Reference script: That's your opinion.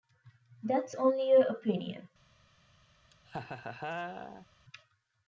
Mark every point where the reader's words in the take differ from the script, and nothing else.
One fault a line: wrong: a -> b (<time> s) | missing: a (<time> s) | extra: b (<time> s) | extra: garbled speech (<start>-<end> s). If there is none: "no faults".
extra: only (0.9 s)